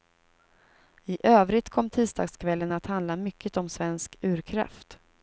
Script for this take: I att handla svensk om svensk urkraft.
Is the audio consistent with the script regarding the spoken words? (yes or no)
no